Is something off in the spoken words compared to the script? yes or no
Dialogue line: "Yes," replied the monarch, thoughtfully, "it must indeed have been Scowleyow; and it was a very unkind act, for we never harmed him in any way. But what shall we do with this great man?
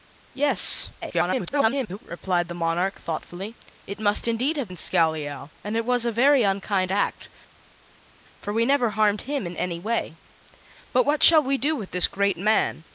yes